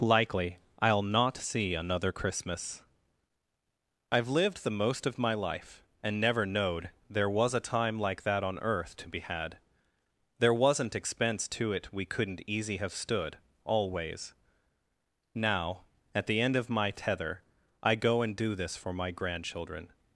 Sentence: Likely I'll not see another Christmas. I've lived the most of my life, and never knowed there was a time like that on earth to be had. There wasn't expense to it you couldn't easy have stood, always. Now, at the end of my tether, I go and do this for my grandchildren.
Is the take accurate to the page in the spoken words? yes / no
no